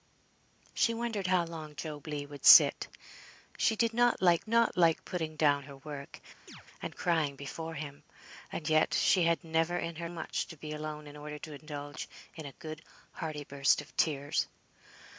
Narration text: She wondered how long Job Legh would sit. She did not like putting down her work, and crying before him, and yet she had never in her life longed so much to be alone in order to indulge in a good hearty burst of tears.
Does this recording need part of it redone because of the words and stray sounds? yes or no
yes